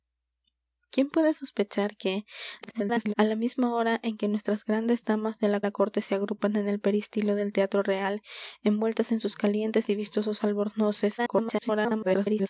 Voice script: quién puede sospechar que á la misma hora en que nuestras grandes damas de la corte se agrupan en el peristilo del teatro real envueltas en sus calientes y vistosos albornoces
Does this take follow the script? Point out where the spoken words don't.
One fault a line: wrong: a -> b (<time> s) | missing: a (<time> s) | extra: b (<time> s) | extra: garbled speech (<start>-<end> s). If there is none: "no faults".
extra: garbled speech (2.6-3.1 s)
extra: la (5.6 s)
extra: garbled speech (11.2-12.5 s)